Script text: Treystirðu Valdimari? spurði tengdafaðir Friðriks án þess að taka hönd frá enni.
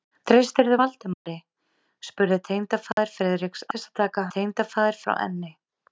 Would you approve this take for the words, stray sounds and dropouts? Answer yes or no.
no